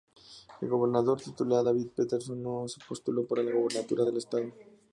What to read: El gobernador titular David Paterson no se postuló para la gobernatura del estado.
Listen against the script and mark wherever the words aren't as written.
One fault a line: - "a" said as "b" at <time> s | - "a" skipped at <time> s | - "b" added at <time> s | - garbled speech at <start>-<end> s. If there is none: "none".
none